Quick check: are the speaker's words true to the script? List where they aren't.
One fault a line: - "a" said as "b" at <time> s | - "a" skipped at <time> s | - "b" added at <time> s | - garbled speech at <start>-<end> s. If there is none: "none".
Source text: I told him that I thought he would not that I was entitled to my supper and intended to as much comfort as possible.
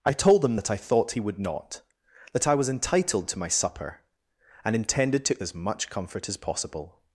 none